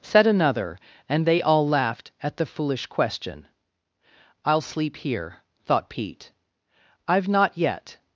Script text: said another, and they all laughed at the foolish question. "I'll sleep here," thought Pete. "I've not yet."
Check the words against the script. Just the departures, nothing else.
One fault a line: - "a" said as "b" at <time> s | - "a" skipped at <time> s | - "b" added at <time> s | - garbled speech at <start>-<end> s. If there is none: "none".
none